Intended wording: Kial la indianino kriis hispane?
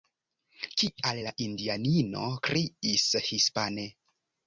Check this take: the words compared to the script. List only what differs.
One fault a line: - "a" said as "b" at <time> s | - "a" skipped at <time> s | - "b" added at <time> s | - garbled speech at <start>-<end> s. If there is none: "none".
none